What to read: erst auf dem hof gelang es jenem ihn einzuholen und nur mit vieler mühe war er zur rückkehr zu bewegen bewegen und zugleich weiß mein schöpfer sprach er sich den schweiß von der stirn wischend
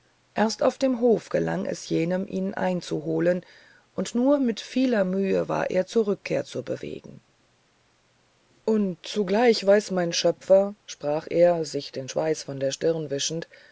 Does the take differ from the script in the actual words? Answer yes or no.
yes